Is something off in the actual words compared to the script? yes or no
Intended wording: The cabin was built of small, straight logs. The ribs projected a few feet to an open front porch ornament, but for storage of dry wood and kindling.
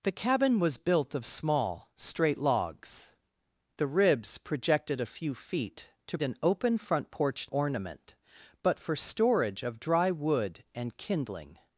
no